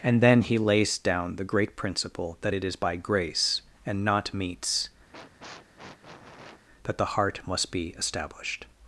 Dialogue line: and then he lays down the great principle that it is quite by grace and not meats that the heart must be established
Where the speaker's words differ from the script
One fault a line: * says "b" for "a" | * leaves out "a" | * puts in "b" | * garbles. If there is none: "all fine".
* leaves out "quite"